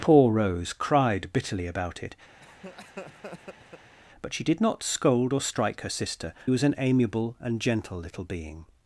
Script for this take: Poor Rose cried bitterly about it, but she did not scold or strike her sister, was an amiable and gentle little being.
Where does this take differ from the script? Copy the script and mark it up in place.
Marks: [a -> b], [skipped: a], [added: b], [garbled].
Poor Rose cried bitterly about it, but she did not scold or strike her sister, was an amiable and gentle little being.